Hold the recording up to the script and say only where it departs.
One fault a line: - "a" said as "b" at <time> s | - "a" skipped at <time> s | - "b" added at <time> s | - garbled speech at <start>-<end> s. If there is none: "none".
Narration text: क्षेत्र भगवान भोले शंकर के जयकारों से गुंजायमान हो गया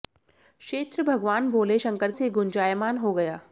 - "के जयकारों" skipped at 2.1 s